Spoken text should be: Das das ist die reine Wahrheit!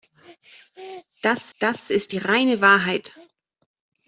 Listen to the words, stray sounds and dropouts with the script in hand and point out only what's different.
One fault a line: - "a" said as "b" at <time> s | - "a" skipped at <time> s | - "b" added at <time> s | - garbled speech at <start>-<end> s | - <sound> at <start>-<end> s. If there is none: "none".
none